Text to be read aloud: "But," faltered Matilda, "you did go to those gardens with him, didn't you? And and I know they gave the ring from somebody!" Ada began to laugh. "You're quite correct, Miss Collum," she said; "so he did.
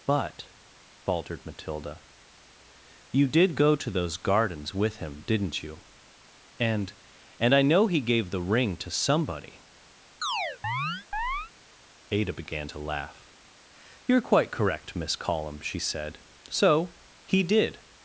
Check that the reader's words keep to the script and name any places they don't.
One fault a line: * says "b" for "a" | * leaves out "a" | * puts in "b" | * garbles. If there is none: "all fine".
* says "he" for "they"
* says "to" for "from"